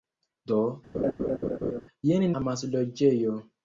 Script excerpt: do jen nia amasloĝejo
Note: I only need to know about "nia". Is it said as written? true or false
false